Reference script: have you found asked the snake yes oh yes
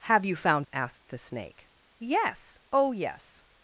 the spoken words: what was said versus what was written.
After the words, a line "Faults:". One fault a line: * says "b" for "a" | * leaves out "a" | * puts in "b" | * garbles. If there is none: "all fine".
have you found asked the snake yes oh yes
Faults:
all fine